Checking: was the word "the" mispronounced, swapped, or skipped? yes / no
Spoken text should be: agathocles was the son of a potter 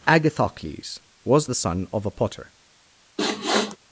no